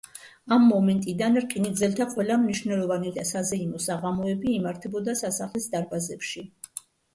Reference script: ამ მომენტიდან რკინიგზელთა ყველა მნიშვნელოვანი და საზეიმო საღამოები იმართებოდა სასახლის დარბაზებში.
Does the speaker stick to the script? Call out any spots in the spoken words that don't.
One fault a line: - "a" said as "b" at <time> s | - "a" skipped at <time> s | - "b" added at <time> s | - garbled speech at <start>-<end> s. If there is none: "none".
none